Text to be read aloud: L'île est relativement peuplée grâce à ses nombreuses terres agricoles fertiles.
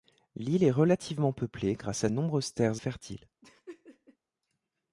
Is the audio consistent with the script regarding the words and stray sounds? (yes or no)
no